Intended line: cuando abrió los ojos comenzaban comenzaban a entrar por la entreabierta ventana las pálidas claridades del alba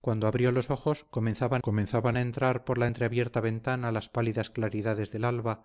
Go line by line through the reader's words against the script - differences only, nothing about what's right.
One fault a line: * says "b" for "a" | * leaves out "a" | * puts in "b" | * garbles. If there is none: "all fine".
all fine